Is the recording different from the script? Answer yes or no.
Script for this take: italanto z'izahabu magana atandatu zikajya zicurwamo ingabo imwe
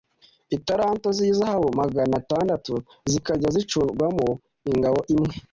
no